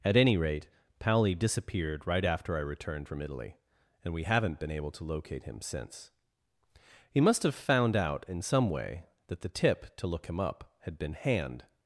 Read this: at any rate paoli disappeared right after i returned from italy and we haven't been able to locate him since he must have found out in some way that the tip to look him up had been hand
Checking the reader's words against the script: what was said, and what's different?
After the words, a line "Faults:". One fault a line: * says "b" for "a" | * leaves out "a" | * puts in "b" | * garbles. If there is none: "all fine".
at any rate paoli disappeared right after i returned from italy and we haven't been able to locate him since he must have found out in some way that the tip to look him up had been hand
Faults:
all fine